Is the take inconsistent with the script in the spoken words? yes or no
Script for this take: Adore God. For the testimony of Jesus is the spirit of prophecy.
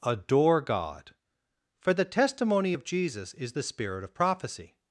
no